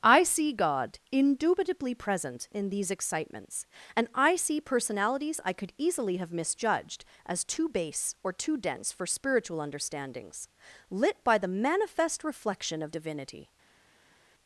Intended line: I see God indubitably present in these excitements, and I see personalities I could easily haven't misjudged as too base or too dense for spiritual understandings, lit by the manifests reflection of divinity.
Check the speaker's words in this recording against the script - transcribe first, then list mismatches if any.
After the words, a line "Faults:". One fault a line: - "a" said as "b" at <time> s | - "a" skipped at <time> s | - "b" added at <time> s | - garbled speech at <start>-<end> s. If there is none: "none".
I see God indubitably present in these excitements, and I see personalities I could easily have misjudged as too base or too dense for spiritual understandings, lit by the manifest reflection of divinity.
Faults:
- "haven't" said as "have" at 6.2 s
- "manifests" said as "manifest" at 11.5 s